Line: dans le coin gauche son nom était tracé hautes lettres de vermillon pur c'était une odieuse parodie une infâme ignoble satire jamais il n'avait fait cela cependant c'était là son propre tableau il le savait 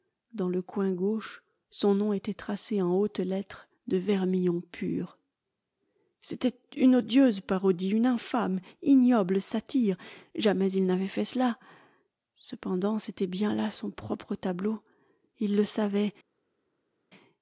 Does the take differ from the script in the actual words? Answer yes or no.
yes